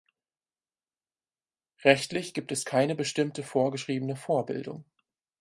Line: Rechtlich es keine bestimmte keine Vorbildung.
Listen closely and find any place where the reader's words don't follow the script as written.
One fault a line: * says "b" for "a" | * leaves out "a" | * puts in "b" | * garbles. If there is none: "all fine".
* puts in "gibt"
* says "vorgeschriebene" for "keine"